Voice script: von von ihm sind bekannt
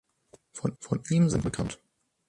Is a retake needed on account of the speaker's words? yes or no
no